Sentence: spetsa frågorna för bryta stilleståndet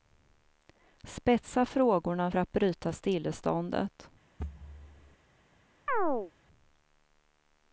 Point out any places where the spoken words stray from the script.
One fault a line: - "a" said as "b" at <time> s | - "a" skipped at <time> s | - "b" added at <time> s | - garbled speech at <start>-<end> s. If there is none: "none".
- "att" added at 2.4 s